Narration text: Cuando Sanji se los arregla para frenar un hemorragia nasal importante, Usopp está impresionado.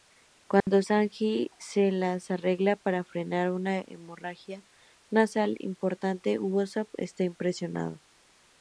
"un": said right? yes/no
no